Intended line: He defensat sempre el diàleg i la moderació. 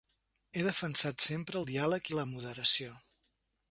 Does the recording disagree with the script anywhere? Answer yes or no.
no